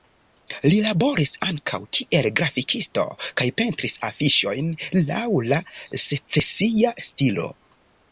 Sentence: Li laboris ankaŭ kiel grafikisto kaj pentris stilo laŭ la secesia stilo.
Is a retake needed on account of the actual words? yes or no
yes